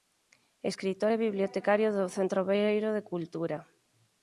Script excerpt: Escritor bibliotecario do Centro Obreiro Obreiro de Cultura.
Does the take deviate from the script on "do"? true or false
false